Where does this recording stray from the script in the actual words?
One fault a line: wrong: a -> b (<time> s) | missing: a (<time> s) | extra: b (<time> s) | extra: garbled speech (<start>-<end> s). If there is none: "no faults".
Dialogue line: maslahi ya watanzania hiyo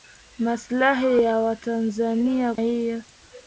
no faults